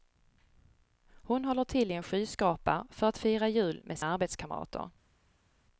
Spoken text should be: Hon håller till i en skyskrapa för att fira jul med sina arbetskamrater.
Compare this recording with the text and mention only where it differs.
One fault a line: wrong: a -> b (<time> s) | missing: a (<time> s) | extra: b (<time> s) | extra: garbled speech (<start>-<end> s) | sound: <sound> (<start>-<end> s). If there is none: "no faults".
missing: sina (4.0 s)